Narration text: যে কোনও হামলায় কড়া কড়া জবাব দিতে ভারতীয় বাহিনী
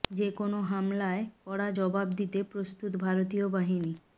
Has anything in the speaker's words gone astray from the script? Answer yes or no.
yes